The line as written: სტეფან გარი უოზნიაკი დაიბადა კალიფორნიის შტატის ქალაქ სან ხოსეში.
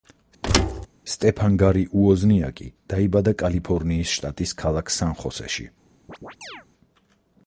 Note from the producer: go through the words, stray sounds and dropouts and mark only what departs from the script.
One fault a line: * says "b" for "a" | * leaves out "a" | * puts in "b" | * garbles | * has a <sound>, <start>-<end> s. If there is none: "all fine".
* has a thud, 0.4-0.9 s
* has a chirp, 6.1-6.7 s